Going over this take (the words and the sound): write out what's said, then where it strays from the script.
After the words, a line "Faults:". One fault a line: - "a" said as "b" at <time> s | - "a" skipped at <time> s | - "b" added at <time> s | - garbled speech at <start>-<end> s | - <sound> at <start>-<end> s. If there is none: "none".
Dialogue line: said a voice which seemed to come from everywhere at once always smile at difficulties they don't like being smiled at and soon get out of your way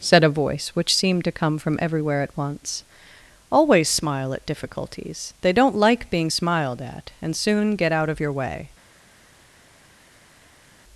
said a voice which seemed to come from everywhere at once always smile at difficulties they don't like being smiled at and soon get out of your way
Faults:
none